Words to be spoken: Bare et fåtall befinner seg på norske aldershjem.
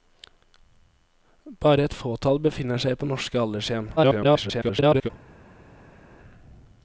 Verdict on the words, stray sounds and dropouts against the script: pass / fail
fail